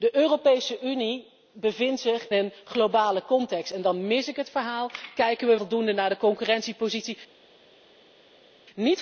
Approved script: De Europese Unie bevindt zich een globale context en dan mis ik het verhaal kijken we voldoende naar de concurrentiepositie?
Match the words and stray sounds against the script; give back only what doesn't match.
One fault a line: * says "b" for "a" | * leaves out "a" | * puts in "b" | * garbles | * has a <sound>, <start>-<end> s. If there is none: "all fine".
all fine